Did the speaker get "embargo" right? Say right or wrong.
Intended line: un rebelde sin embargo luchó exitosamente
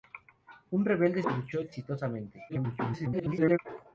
wrong